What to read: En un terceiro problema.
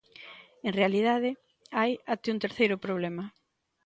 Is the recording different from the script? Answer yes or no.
yes